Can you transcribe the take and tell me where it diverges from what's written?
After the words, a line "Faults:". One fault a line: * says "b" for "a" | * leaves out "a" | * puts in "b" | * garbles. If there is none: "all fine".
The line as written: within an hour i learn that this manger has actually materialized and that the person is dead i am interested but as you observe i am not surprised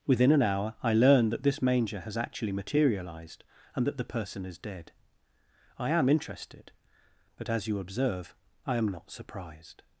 within an hour i learn that this manger has actually materialized and that the person is dead i am interested but as you observe i am not surprised
Faults:
all fine